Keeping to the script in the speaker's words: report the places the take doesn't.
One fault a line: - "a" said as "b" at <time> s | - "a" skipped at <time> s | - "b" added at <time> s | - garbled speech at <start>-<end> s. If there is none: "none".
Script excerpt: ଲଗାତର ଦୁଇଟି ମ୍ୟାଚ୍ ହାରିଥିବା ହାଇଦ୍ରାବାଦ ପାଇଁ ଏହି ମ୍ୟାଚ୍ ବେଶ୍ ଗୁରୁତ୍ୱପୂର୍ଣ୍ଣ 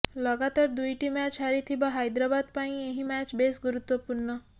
none